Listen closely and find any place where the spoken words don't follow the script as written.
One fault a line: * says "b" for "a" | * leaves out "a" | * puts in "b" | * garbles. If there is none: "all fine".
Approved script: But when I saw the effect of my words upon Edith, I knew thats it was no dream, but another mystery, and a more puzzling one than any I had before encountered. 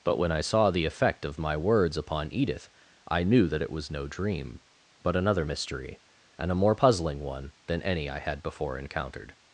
* says "that" for "thats"